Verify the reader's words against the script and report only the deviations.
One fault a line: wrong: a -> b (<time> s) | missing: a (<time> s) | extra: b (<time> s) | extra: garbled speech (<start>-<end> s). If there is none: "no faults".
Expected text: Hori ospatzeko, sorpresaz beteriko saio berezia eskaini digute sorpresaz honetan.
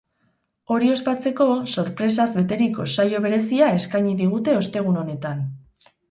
wrong: sorpresaz -> ostegun (4.6 s)